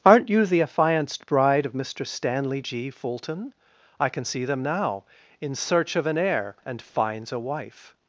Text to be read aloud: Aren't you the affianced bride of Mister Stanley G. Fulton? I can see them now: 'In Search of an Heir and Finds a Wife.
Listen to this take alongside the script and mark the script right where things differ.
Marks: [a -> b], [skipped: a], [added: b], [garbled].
Aren't you the affianced bride of Mister Stanley G. Fulton? I can see them now: 'In Search of an Heir and Finds a Wife.